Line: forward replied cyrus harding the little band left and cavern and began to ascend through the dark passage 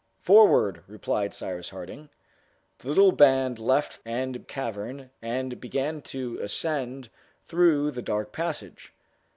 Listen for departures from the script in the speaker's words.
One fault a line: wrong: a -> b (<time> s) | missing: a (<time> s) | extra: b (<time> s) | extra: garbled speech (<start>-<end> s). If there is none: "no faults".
no faults